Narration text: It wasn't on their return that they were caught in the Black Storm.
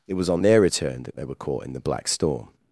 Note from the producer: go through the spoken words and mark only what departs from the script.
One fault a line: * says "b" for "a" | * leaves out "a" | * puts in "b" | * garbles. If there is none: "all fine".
* says "was" for "wasn't"